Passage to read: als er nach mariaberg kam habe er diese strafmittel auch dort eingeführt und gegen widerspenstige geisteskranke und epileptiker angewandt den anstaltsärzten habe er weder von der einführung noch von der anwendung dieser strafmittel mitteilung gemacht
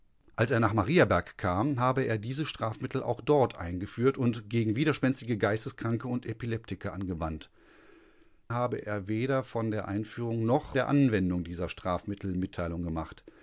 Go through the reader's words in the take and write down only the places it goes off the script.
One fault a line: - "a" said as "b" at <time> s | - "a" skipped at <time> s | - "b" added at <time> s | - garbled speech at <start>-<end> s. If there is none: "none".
- "den anstaltsärzten" skipped at 7.5 s
- "von" skipped at 10.8 s